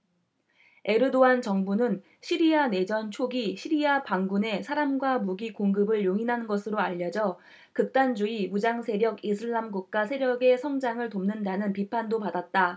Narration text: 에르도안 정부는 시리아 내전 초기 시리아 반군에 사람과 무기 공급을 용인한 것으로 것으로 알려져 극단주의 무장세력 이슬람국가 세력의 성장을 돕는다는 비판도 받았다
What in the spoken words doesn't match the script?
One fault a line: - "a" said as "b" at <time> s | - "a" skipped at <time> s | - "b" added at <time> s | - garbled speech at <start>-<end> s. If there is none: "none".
- "것으로" skipped at 6.8 s